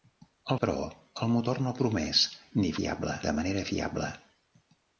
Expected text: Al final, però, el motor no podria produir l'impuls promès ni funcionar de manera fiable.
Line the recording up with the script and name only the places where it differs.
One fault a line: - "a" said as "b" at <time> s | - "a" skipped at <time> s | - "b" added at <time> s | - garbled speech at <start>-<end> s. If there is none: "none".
- "final" skipped at 0.6 s
- "podria produir l'impuls" skipped at 1.7 s
- "funcionar" said as "fiable" at 2.8 s